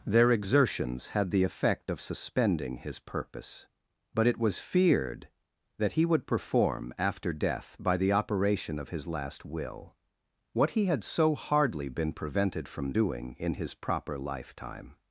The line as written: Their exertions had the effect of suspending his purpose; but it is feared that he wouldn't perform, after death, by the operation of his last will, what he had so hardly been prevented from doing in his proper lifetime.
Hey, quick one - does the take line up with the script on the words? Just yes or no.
no